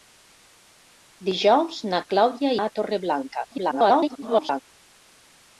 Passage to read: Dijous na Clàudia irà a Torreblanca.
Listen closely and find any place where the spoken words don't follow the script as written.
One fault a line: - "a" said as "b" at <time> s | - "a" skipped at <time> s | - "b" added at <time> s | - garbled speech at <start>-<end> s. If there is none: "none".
- "irà" skipped at 2.5 s
- garbled speech at 3.5-4.6 s